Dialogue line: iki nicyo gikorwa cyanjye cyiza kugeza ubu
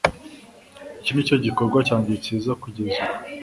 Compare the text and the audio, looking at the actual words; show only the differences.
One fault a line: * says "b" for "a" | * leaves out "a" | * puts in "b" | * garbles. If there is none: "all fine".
all fine